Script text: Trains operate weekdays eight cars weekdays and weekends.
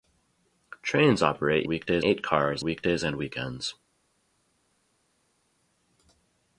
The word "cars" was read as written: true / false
true